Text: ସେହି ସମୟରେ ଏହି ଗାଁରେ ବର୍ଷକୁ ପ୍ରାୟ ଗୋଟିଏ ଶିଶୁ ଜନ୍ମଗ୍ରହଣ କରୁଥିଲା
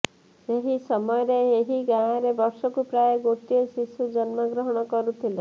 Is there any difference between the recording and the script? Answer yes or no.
no